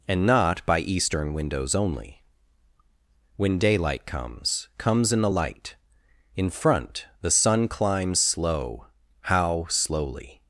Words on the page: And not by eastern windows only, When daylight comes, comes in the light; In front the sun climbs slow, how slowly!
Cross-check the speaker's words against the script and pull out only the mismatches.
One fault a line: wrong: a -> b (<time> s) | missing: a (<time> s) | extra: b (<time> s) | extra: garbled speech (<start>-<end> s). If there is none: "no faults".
no faults